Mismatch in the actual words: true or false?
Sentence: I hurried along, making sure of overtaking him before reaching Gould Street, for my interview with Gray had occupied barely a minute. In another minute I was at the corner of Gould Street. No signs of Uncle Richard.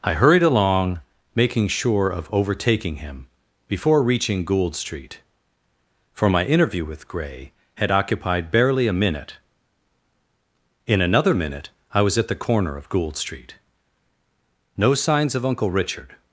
false